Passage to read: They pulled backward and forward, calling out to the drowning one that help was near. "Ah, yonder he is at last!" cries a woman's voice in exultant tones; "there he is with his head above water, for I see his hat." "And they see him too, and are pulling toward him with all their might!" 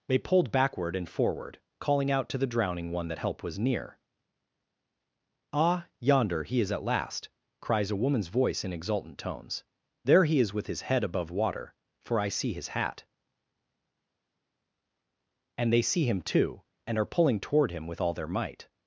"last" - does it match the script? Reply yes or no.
yes